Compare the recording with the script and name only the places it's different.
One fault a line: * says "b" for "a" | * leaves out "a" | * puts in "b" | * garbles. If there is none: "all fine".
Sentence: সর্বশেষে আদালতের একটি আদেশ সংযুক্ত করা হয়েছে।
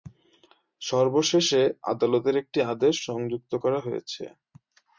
all fine